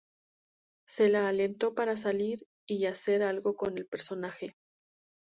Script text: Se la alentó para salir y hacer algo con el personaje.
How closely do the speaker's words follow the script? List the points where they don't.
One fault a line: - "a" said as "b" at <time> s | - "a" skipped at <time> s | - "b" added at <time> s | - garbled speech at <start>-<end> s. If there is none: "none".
none